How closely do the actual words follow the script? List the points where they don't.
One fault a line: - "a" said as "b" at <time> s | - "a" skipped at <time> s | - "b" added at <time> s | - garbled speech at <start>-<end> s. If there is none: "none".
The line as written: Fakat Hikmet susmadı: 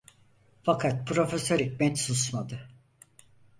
- "Profesör" added at 1.1 s